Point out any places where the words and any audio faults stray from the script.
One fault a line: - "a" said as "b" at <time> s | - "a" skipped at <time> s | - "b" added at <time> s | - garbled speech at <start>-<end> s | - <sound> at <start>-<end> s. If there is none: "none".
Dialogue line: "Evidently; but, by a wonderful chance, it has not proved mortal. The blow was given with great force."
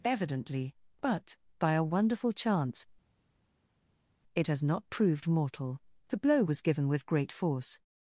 none